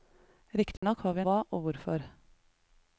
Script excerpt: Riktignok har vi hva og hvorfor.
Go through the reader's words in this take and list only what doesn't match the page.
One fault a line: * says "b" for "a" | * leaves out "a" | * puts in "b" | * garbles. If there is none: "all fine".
all fine